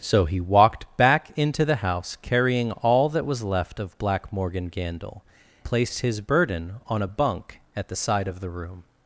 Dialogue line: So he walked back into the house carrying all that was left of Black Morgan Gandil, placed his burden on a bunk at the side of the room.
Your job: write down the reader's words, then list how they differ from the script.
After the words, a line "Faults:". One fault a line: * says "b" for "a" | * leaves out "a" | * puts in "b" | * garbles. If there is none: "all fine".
So he walked back into the house carrying all that was left of Black Morgan Gandil, placed his burden on a bunk at the side of the room.
Faults:
all fine